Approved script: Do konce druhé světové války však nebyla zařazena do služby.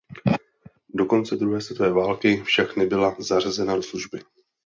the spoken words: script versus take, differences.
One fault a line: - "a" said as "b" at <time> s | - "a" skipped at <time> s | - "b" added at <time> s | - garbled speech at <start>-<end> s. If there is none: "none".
none